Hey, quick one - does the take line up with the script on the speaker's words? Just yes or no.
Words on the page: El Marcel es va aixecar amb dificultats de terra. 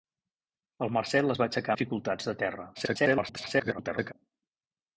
no